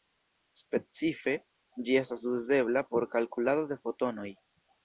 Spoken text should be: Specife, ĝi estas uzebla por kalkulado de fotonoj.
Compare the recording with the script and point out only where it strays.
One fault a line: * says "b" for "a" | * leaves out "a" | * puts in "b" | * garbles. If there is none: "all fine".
all fine